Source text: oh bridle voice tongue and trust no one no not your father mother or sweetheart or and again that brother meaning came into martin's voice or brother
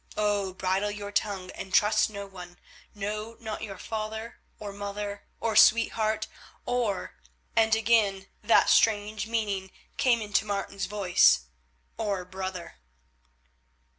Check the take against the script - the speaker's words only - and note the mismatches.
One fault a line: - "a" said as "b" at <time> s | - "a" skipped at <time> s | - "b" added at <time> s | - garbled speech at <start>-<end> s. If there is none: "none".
- "voice" said as "your" at 0.9 s
- "or" added at 4.6 s
- "brother" said as "strange" at 8.7 s